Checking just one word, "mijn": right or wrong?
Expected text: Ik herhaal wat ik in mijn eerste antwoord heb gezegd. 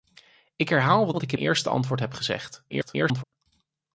wrong